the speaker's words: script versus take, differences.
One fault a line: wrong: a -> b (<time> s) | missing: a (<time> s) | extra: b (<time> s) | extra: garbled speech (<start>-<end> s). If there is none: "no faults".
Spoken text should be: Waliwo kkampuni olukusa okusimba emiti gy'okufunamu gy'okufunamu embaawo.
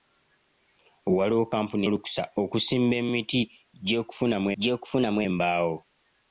no faults